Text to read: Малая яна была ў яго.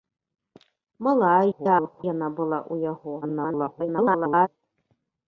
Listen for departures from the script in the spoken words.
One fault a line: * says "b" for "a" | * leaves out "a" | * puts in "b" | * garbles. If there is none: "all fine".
* garbles
* garbles